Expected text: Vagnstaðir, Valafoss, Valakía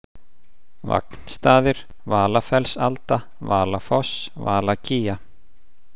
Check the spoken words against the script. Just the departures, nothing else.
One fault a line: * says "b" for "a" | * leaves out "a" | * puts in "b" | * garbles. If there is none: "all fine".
* puts in "Valafellsalda"